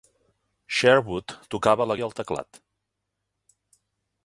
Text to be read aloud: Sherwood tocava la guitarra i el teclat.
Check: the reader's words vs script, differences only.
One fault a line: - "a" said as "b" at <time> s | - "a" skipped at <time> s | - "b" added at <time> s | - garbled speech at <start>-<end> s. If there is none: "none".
- "guitarra" skipped at 2.0 s